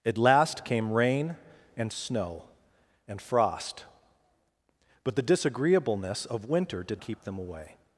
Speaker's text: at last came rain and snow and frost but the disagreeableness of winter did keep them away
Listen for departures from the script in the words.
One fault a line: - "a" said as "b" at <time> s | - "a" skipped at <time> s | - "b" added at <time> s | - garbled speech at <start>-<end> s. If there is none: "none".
none